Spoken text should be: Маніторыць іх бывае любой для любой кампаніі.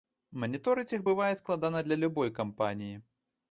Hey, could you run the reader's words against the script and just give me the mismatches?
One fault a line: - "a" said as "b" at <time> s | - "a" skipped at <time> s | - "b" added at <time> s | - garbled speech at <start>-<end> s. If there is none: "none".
- "любой" said as "складана" at 1.4 s